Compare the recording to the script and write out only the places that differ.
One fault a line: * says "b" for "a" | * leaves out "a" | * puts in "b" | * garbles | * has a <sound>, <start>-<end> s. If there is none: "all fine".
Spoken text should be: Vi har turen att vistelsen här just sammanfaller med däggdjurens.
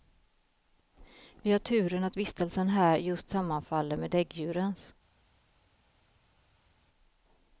all fine